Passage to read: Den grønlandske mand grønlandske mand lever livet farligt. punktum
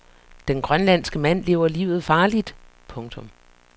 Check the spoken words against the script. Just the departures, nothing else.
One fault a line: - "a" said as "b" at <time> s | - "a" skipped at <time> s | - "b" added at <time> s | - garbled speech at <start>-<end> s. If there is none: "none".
- "grønlandske mand" skipped at 1.4 s